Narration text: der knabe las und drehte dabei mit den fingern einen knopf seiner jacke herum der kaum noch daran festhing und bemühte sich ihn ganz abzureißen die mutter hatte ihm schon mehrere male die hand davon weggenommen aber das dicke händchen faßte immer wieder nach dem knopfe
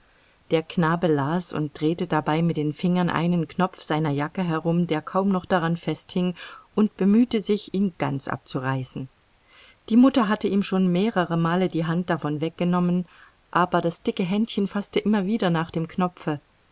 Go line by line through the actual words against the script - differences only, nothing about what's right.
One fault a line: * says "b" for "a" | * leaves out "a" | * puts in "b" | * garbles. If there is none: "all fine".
all fine